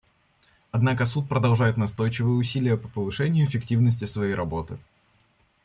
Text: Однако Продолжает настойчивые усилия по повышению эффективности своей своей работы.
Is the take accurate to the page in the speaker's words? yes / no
no